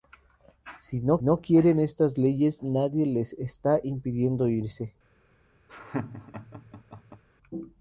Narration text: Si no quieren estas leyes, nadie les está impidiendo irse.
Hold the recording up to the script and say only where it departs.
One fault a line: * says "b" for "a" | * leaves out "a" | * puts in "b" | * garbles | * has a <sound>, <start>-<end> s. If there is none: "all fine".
* puts in "no"
* has a laugh, 5.7-7.2 s